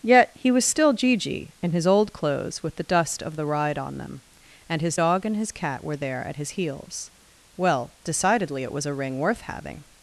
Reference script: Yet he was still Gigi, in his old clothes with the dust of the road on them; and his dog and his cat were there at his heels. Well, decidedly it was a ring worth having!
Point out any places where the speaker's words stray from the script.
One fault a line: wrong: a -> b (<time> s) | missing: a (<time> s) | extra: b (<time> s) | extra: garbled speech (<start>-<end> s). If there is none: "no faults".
wrong: road -> ride (3.4 s)